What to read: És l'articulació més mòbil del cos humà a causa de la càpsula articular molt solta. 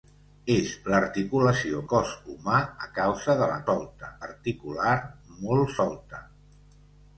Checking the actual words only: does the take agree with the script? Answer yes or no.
no